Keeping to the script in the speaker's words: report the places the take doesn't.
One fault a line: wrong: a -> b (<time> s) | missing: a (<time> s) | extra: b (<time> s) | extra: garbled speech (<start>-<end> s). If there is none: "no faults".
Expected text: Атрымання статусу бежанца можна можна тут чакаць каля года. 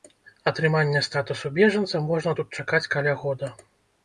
missing: можна (2.4 s)